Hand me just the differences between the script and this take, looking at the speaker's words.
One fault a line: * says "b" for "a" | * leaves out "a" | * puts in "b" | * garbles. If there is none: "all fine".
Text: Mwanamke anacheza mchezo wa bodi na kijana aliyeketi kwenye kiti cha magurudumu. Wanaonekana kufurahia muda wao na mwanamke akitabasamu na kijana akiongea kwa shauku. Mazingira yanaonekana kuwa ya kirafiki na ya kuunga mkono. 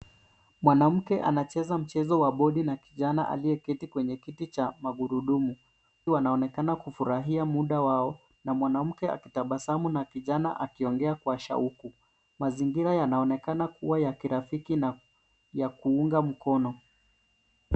all fine